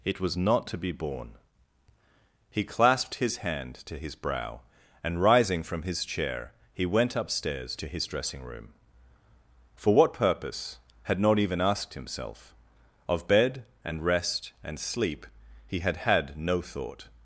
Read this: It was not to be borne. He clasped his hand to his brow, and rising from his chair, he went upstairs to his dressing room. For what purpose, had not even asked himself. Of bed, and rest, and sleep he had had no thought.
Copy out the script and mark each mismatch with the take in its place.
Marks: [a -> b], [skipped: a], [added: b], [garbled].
It was not to be borne. He clasped his hand to his brow, and rising from his chair, he went upstairs to his dressing room. For what purpose, had not even asked himself. Of bed, and rest, and sleep he had had no thought.